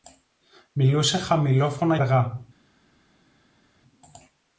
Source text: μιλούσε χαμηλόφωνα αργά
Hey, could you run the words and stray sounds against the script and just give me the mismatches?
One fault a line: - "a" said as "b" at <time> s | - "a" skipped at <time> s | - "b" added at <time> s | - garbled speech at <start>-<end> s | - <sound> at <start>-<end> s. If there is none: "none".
none